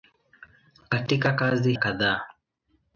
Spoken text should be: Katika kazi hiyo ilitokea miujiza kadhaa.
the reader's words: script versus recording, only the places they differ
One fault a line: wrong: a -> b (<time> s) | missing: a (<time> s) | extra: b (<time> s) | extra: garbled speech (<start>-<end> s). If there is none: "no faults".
missing: hiyo ilitokea miujiza (1.7 s)